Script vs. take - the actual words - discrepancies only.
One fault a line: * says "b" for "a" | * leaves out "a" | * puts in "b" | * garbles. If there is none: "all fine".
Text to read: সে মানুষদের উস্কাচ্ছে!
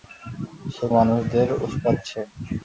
all fine